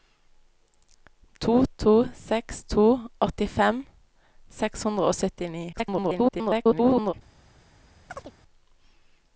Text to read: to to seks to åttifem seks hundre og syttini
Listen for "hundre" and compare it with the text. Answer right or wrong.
right